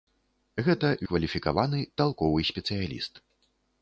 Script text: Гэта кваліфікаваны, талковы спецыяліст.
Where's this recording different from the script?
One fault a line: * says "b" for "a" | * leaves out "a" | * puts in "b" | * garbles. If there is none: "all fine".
all fine